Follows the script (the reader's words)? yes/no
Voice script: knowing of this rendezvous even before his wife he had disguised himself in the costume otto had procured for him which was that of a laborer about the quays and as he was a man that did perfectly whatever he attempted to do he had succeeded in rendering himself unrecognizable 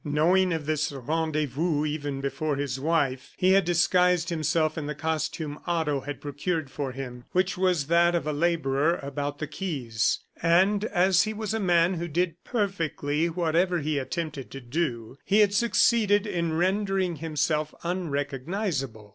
no